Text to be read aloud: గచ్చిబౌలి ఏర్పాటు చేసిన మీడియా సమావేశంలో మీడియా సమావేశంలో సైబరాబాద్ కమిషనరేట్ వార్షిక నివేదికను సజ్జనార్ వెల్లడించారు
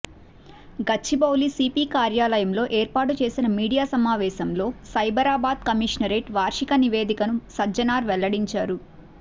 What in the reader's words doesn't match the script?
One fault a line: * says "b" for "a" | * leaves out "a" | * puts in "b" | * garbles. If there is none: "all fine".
* puts in "సిపి కార్యాలయంలో"
* leaves out "మీడియా సమావేశంలో"